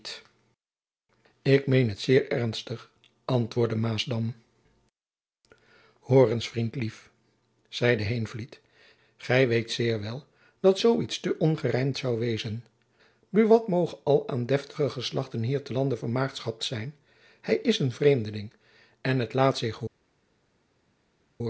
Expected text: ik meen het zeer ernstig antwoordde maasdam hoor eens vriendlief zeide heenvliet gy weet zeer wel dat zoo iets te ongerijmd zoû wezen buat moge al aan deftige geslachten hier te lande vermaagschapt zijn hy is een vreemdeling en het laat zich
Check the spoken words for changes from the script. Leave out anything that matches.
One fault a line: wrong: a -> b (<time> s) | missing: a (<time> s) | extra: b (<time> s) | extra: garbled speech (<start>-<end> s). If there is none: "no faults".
no faults